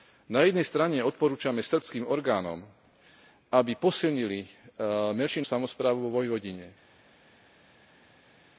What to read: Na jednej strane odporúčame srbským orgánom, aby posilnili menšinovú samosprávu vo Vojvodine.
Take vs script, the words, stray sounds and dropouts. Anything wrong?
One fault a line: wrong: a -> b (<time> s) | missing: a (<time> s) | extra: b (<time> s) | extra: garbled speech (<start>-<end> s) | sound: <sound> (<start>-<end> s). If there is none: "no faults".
missing: menšinovú (4.5 s)